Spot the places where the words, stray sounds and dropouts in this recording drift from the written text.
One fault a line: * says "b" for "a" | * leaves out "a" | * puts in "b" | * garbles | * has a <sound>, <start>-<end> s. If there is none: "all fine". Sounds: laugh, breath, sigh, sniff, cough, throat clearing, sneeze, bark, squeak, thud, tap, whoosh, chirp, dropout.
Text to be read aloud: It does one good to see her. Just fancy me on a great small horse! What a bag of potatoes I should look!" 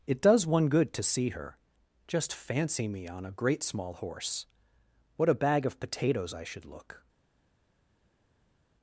all fine